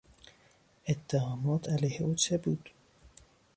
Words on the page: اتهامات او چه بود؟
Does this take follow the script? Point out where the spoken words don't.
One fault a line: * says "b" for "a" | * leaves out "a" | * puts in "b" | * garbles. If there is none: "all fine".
* puts in "علیه"